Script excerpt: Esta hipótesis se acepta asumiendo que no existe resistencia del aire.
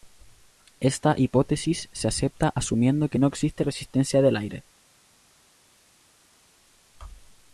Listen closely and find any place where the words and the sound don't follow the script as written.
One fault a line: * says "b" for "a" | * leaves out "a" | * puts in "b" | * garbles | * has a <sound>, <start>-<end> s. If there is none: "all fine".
all fine